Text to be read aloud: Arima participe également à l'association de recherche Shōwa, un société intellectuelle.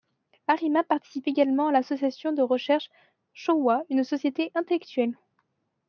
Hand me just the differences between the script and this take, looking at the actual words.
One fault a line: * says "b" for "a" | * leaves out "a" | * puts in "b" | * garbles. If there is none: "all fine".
* says "une" for "un"